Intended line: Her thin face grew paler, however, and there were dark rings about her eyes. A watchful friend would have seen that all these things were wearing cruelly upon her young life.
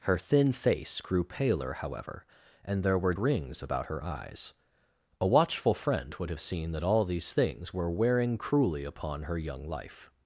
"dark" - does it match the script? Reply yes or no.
no